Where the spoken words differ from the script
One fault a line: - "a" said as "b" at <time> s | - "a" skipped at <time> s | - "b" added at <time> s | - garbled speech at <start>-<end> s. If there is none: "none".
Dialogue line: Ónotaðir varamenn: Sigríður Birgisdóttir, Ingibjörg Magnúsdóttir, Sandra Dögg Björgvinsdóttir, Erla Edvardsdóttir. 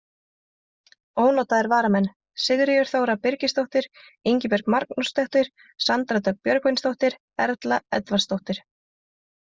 - "Þóra" added at 2.9 s